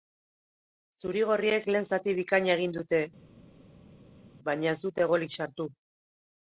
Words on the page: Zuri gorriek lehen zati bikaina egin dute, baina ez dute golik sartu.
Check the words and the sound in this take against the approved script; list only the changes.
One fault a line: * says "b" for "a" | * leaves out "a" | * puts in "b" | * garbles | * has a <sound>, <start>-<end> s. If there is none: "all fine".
all fine